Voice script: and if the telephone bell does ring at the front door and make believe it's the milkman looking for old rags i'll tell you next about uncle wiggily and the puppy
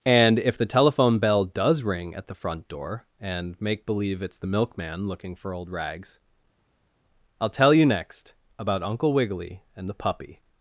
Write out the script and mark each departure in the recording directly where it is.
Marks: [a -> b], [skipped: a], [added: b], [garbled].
and if the telephone bell does ring at the front door and make believe it's the milkman looking for old rags i'll tell you next about uncle wiggily and the puppy